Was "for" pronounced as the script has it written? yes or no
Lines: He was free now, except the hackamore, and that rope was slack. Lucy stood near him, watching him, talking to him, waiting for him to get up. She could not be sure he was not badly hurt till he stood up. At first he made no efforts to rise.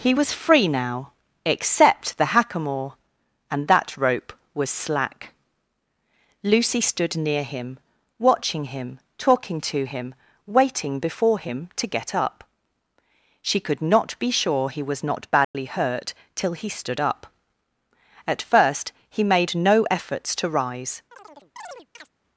no